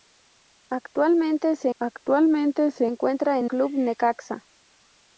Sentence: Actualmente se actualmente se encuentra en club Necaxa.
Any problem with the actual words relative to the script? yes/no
no